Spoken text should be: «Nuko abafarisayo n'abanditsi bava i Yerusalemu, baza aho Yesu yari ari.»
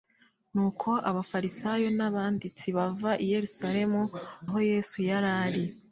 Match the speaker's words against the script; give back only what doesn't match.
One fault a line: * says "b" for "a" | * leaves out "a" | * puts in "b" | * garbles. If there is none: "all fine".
* leaves out "baza"